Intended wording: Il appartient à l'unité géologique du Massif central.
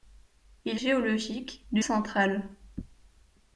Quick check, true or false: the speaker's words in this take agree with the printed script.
false